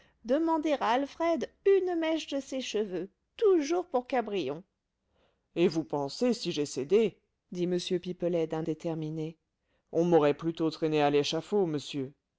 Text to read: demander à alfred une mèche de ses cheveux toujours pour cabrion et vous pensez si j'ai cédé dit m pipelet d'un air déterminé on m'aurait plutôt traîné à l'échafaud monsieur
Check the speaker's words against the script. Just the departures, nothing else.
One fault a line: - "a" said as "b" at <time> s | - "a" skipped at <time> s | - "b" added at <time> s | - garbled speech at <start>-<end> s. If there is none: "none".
- "air" skipped at 8.7 s